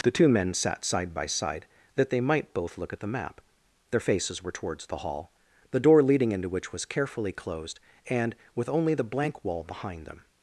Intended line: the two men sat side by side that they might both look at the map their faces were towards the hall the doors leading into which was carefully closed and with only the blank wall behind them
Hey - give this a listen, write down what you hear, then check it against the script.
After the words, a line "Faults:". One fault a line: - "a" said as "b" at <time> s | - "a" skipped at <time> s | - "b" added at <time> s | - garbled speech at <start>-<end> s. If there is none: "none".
the two men sat side by side that they might both look at the map their faces were towards the hall the door leading into which was carefully closed and with only the blank wall behind them
Faults:
- "doors" said as "door" at 5.8 s